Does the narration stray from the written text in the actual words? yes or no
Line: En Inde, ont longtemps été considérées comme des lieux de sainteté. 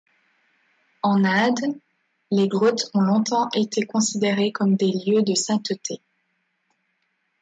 yes